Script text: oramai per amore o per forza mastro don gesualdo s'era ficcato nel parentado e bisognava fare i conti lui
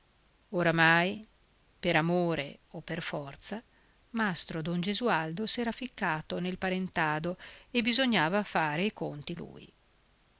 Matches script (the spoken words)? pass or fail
pass